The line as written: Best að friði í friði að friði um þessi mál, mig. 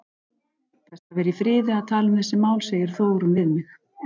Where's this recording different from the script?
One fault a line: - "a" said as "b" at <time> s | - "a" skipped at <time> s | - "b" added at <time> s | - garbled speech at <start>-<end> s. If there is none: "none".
- "friði" said as "vera" at 1.2 s
- "friði" said as "tala" at 1.9 s
- "segir Þórunn við" added at 2.7 s